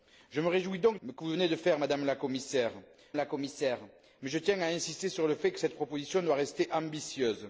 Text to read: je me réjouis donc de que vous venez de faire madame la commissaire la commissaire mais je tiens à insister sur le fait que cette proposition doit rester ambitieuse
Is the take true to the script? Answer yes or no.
yes